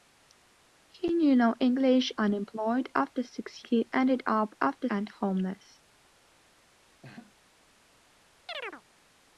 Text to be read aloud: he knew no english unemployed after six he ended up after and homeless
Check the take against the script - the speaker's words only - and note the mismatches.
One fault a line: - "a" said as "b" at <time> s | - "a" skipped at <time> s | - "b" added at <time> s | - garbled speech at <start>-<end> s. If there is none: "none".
none